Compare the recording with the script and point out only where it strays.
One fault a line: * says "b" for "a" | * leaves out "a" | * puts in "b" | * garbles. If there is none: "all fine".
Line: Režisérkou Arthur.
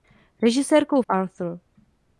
all fine